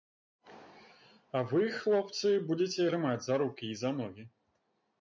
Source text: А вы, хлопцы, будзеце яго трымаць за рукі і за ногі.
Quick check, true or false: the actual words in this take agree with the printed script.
false